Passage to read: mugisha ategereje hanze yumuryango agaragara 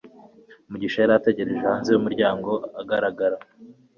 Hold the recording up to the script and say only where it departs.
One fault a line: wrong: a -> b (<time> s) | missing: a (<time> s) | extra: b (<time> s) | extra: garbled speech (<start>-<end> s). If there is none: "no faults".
extra: yari (1.0 s)